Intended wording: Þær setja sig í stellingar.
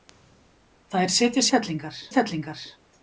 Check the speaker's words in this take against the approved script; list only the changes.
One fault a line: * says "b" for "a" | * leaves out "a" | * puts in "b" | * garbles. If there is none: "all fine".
* says "stellingar" for "sig"